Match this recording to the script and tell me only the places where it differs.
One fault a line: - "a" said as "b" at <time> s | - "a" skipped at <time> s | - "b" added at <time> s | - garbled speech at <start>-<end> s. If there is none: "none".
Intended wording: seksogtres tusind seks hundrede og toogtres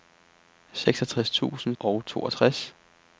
- "seks hundrede" skipped at 1.8 s